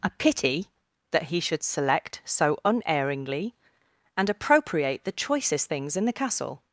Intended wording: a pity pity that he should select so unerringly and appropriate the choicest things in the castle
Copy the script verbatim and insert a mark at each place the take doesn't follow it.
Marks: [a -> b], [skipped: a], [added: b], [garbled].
a pity [skipped: pity] that he should select so unerringly and appropriate the choicest things in the castle